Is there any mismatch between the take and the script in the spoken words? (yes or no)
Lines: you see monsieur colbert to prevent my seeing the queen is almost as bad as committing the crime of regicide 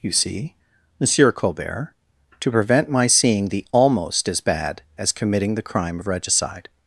yes